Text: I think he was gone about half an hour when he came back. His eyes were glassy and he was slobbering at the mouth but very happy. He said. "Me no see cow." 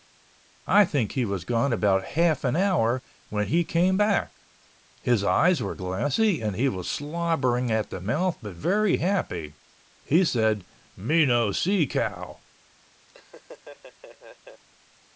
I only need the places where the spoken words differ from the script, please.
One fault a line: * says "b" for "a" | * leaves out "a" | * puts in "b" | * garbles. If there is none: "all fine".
all fine